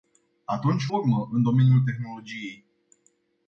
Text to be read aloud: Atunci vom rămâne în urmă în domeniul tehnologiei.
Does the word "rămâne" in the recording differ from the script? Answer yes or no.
yes